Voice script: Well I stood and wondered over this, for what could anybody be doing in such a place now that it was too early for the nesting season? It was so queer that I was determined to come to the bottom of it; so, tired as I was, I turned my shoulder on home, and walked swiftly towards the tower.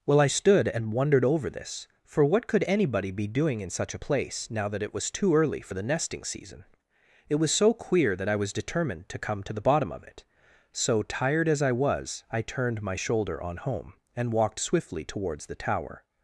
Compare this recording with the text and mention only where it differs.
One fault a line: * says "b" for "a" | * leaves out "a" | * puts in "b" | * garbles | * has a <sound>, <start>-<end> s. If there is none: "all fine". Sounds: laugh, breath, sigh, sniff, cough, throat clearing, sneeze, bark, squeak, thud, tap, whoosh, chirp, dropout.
all fine